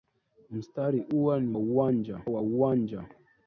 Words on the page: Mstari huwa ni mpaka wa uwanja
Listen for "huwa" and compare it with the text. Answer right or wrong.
right